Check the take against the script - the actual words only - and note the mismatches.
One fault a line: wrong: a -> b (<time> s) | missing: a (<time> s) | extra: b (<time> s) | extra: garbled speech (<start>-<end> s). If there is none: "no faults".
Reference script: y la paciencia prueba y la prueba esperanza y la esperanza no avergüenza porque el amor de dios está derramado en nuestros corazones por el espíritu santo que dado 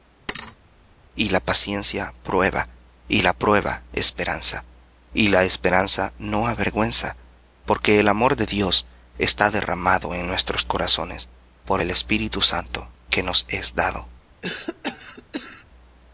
extra: nos es (13.2 s)